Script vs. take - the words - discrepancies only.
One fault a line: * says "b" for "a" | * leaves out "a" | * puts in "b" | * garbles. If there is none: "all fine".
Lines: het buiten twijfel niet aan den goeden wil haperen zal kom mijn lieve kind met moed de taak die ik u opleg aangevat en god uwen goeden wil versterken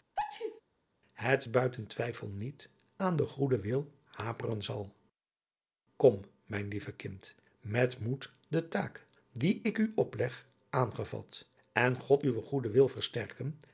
all fine